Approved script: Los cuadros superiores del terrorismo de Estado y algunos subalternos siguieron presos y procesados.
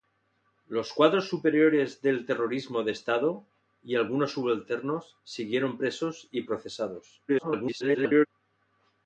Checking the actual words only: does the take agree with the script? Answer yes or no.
no